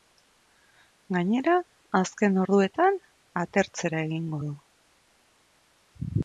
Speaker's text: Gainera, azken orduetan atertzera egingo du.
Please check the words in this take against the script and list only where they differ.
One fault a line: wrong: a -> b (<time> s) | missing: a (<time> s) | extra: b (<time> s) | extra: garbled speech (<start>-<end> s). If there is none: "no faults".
no faults